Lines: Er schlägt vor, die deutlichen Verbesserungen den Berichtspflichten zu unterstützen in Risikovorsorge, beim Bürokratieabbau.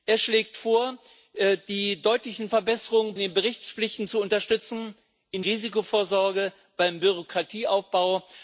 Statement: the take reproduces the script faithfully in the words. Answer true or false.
true